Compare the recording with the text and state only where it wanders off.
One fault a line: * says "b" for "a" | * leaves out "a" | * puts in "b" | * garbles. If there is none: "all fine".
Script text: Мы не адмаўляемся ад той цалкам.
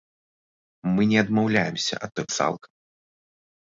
all fine